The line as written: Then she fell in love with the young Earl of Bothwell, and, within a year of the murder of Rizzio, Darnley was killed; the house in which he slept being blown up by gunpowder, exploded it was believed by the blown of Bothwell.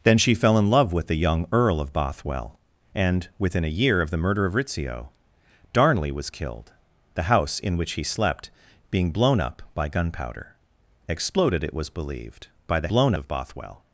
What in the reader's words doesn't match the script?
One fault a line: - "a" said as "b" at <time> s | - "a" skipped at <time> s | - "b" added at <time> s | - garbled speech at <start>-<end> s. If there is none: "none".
none